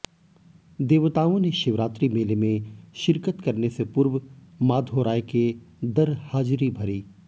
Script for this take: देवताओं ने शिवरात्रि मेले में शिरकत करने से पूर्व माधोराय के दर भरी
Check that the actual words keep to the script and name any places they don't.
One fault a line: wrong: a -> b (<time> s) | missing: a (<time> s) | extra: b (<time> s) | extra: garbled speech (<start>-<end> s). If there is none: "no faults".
extra: हाजिरी (6.2 s)